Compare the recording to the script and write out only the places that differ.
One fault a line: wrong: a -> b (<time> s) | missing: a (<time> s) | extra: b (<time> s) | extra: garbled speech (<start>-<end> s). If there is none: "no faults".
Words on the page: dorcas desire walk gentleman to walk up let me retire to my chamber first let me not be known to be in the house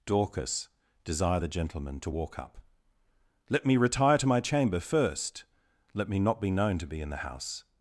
wrong: walk -> the (1.4 s)